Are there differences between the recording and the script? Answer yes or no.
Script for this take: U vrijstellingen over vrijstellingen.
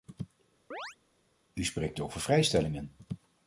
yes